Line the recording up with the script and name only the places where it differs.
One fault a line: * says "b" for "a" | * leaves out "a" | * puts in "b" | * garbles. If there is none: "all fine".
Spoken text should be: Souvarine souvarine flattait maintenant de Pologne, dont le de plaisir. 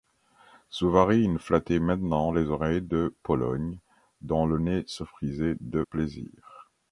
* leaves out "souvarine"
* puts in "les oreilles"
* puts in "nez se frisait"